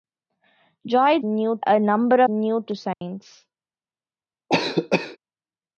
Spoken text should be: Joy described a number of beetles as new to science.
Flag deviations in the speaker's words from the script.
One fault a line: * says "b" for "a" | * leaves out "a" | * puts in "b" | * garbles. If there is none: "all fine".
* says "new" for "described"
* leaves out "of beetles as"